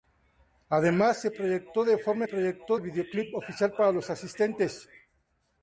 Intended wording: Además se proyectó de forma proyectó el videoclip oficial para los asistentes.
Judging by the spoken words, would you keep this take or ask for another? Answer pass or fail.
pass